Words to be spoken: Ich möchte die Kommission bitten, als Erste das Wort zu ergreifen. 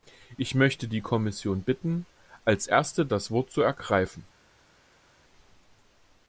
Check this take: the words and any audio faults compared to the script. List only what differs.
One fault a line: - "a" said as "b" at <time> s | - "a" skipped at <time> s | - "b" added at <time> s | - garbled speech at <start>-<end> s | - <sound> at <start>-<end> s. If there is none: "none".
none